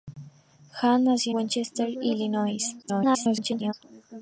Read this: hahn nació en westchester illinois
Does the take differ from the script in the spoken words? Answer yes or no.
yes